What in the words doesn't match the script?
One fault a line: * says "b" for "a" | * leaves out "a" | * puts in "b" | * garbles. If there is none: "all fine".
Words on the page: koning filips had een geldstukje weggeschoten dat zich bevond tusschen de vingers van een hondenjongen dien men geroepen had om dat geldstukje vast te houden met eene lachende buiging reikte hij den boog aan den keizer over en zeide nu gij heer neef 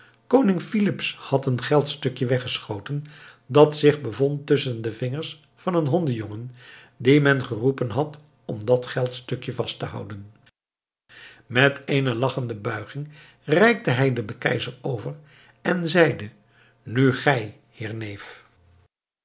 * leaves out "boog aan"